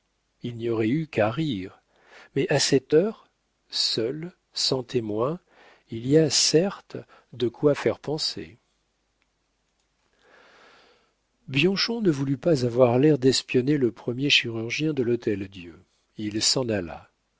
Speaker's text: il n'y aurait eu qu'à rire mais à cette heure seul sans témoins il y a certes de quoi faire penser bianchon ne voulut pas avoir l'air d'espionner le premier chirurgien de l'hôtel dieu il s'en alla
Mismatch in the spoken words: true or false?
false